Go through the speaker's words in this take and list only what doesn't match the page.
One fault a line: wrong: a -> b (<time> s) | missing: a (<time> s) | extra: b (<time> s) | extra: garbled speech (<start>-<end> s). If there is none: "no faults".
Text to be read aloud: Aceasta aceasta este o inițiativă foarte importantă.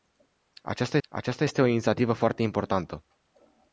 no faults